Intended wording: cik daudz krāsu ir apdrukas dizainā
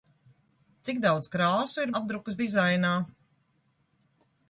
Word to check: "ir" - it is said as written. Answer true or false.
true